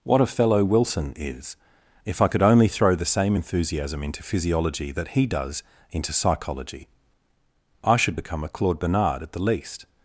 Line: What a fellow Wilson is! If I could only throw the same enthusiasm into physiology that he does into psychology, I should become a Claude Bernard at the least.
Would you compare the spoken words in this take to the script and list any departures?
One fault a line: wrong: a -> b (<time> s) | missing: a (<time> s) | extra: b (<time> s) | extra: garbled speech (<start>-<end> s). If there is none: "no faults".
no faults